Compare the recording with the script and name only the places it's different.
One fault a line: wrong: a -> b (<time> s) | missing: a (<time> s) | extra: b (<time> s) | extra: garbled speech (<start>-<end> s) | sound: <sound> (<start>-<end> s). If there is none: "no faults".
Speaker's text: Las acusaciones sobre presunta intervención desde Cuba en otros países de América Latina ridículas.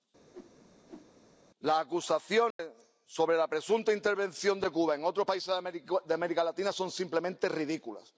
sound: whoosh (0.3-1.1 s)
sound: dropout (2.5-2.6 s)
extra: la (3.4 s)
wrong: desde -> de (4.6 s)
extra: son simplemente (6.7 s)